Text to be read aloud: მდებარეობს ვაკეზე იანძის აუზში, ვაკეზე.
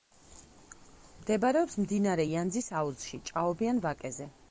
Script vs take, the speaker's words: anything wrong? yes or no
yes